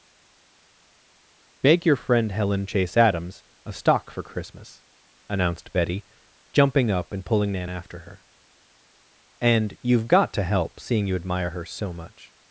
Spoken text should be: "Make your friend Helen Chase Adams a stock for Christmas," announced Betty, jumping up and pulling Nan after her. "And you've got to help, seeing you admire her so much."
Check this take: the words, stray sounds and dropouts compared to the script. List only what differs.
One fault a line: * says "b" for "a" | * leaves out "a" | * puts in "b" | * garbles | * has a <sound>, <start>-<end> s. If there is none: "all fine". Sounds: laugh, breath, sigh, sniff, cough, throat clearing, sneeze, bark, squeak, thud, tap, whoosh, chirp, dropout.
all fine